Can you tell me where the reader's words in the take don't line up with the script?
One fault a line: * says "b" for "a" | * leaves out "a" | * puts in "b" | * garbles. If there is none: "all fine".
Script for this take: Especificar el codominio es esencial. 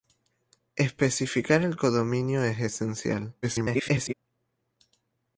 * garbles